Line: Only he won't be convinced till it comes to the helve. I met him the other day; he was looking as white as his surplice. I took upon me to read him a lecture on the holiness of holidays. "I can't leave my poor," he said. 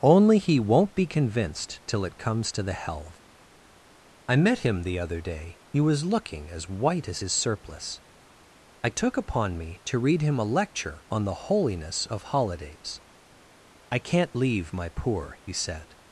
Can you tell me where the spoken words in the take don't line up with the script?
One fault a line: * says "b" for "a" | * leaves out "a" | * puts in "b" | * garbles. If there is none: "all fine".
all fine